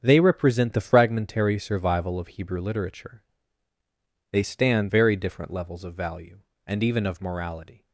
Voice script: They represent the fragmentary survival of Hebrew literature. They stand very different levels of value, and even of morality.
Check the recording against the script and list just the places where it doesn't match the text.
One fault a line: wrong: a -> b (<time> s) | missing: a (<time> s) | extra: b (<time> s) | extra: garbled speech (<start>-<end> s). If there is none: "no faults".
no faults